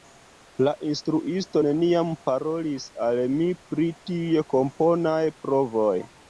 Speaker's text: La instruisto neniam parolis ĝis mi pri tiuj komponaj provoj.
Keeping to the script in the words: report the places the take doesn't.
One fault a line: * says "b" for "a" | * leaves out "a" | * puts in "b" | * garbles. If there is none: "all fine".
* says "al" for "ĝis"